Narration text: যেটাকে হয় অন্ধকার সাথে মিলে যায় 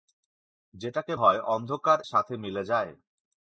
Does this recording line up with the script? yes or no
yes